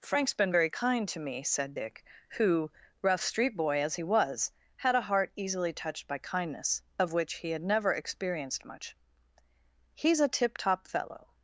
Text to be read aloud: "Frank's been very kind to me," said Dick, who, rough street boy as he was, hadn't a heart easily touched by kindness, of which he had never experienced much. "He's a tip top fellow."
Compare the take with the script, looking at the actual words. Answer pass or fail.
fail